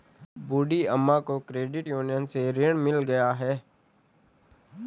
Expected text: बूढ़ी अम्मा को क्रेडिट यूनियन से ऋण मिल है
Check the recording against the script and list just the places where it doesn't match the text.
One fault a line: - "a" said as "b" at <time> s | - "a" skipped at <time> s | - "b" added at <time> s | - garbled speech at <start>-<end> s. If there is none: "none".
- "गया" added at 3.0 s